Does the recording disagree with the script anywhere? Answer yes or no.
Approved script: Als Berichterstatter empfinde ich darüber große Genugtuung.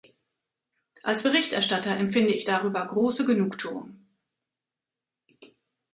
no